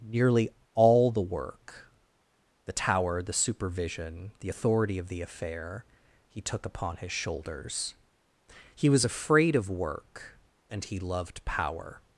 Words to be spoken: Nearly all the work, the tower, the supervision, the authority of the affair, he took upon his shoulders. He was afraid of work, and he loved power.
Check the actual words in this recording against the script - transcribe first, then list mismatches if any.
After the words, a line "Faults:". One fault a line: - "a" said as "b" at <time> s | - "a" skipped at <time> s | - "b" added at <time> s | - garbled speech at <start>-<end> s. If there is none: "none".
Nearly all the work, the tower, the supervision, the authority of the affair, he took upon his shoulders. He was afraid of work, and he loved power.
Faults:
none